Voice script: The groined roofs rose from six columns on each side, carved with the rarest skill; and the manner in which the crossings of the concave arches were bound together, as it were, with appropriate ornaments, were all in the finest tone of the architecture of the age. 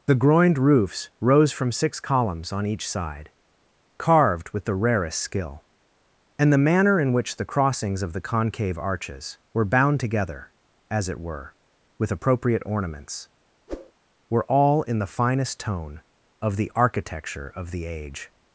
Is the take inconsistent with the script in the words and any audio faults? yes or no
yes